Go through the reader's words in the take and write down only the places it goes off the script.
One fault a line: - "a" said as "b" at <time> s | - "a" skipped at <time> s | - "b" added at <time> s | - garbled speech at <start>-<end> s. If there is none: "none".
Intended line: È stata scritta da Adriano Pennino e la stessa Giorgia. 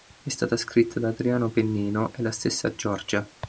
none